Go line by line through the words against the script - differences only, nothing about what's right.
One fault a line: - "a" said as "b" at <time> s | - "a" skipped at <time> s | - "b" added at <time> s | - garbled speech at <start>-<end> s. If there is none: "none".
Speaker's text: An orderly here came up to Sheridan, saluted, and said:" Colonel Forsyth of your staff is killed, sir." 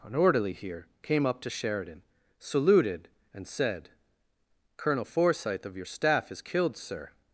none